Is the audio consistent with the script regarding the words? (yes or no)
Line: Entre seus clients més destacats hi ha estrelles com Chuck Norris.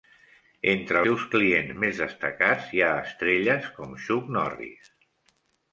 yes